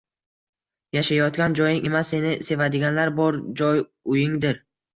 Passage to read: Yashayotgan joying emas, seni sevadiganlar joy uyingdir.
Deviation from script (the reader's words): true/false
true